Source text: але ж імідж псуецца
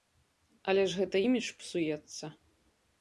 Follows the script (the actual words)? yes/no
no